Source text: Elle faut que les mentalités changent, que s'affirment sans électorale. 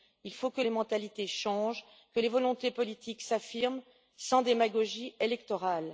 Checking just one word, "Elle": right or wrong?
wrong